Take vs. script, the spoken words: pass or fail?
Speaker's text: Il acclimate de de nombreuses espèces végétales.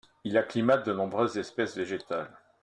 fail